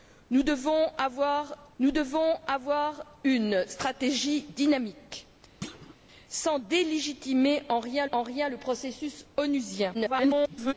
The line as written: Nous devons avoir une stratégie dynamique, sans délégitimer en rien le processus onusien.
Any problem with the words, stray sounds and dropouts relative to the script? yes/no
yes